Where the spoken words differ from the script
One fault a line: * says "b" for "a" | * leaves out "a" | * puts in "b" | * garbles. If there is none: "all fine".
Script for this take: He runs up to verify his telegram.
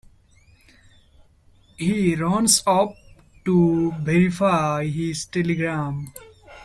all fine